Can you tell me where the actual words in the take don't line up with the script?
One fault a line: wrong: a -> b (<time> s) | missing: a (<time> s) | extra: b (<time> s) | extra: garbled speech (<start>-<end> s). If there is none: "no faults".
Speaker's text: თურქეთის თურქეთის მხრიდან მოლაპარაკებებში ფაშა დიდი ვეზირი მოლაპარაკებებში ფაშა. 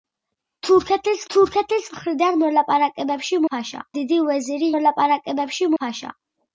no faults